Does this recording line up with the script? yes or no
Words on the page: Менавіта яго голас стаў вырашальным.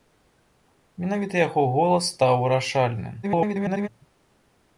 no